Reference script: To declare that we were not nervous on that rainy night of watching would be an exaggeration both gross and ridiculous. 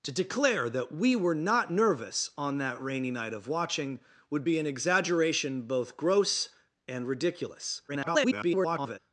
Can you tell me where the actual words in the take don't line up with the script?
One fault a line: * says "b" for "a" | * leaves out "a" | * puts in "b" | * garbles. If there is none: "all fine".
* garbles